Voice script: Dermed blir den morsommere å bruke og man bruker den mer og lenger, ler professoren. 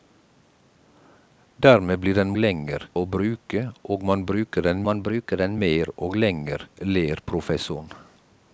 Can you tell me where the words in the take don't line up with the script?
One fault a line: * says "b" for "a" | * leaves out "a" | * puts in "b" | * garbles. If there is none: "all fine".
* says "lenger" for "morsommere"
* puts in "man bruker den"